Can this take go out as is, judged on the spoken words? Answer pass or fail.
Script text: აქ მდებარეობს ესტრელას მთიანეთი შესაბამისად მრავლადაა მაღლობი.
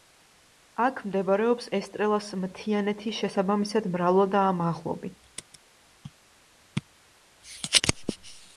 pass